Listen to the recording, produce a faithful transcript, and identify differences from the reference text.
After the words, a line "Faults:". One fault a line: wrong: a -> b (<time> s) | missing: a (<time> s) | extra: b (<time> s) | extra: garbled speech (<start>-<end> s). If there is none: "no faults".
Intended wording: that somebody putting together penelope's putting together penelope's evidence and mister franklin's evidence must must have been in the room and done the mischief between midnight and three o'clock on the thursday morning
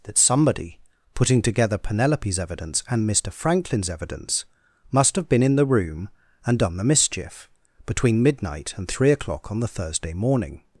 that somebody putting together penelope's evidence and mister franklin's evidence must have been in the room and done the mischief between midnight and three o'clock on the thursday morning
Faults:
missing: putting together penelope's (2.4 s)
missing: must (5.2 s)